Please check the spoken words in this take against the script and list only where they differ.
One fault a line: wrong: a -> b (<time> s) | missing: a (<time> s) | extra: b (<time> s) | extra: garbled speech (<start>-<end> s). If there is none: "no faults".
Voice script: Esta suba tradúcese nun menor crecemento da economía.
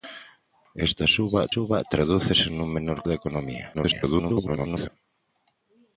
extra: suba (1.5 s)
missing: crecemento (3.0 s)
extra: garbled speech (3.7-4.9 s)